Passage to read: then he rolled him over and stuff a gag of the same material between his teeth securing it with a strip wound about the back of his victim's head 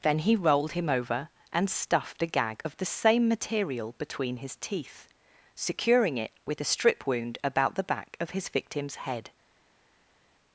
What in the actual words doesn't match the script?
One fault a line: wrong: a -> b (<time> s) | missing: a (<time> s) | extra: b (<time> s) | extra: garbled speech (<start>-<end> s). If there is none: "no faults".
wrong: stuff -> stuffed (1.7 s)